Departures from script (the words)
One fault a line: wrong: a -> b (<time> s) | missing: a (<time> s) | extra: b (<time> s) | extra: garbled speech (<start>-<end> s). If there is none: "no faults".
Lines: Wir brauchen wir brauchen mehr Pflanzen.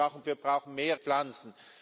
no faults